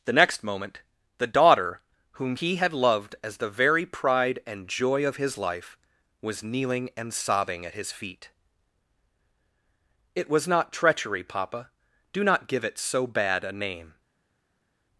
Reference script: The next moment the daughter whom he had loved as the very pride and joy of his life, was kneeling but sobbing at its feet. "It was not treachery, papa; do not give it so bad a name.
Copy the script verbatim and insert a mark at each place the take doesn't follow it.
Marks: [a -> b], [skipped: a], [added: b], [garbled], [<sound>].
The next moment the daughter whom he had loved as the very pride and joy of his life, was kneeling [but -> and] sobbing at [its -> his] feet. "It was not treachery, papa; do not give it so bad a name.